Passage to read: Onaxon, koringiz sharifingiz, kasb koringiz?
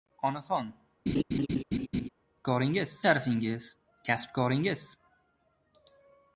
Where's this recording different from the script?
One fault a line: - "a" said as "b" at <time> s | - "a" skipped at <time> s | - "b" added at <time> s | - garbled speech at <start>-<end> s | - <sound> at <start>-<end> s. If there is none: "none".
- laugh at 1.1-2.1 s